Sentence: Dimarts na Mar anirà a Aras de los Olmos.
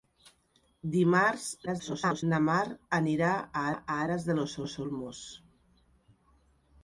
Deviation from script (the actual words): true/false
true